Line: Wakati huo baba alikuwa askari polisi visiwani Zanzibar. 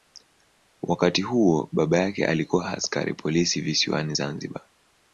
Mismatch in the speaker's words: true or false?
true